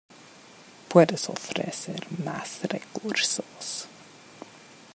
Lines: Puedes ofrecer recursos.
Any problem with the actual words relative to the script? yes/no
yes